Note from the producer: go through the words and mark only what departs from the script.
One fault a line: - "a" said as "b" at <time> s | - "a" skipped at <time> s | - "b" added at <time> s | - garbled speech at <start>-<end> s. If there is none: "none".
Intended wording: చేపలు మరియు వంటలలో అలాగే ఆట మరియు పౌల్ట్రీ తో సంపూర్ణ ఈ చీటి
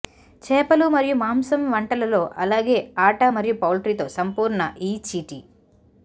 - "మాంసం" added at 1.1 s